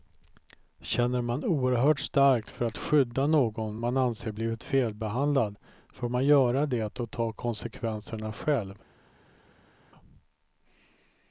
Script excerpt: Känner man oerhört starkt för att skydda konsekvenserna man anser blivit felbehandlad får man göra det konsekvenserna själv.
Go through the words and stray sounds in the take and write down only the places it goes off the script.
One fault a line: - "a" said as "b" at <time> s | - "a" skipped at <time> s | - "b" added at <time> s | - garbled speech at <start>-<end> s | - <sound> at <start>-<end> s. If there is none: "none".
- "konsekvenserna" said as "någon" at 3.3 s
- "och ta" added at 7.0 s